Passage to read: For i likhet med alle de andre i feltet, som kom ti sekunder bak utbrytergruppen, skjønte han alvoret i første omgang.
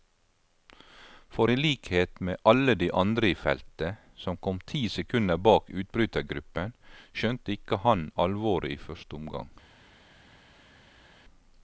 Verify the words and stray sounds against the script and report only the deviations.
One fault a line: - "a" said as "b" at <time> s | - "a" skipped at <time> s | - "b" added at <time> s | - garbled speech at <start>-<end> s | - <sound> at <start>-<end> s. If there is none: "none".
- "ikke" added at 7.6 s